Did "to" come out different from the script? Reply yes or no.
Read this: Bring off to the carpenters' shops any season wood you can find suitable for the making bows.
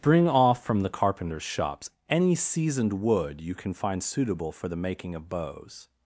yes